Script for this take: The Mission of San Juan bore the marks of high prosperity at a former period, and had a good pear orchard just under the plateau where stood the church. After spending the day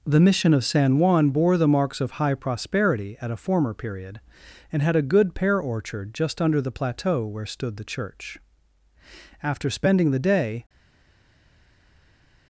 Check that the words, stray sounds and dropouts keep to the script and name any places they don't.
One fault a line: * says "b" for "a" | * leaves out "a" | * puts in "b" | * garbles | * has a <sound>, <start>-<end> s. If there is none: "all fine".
all fine